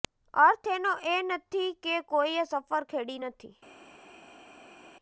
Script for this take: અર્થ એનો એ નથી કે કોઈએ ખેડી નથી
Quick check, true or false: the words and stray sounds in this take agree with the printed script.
false